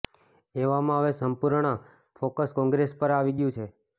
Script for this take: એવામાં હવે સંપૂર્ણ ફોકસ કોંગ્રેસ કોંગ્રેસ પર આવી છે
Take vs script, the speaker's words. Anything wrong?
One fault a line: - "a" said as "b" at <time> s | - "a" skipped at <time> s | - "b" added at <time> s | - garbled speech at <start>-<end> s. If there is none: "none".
- "કોંગ્રેસ" skipped at 3.0 s
- "ગયું" added at 3.4 s